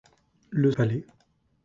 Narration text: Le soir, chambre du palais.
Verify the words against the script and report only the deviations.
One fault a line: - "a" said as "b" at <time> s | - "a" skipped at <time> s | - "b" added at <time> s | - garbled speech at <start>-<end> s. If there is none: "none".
- "soir chambre du" skipped at 0.7 s